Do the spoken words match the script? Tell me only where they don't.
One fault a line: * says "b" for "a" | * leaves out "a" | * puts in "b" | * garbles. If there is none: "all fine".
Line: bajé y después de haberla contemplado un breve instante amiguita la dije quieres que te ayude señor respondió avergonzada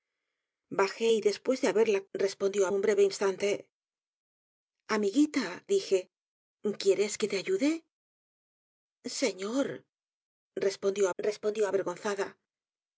* says "respondió" for "contemplado"
* leaves out "la"
* puts in "respondió"